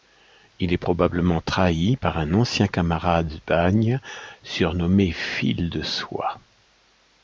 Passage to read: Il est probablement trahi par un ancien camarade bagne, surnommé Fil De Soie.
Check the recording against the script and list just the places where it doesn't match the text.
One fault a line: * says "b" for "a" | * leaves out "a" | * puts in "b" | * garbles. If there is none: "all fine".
all fine